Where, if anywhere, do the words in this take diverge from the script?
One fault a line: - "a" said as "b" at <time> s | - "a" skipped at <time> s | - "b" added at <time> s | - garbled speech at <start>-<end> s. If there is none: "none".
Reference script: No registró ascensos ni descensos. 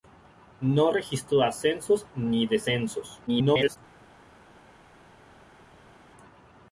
- garbled speech at 3.3-3.8 s